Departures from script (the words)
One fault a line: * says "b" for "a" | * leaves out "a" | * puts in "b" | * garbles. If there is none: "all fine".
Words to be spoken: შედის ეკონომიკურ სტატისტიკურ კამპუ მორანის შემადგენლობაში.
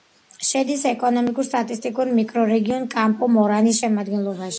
* puts in "მიკრორეგიონ"